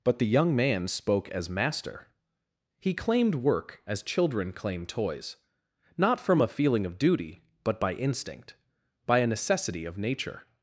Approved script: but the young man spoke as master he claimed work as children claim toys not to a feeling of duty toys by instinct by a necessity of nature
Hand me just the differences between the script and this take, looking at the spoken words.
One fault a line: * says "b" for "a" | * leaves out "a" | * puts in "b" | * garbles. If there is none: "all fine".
* says "from" for "to"
* says "but" for "toys"